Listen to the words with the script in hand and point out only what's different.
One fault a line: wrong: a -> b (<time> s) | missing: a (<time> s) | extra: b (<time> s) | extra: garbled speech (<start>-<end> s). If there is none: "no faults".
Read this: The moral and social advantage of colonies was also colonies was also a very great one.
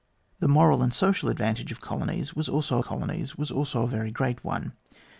no faults